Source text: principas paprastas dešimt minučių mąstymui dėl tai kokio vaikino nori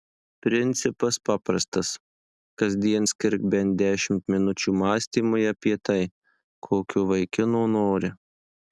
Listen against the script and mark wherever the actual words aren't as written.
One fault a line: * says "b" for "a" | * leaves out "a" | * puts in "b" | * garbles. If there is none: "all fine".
* puts in "kasdien skirk bent"
* says "apie" for "dėl"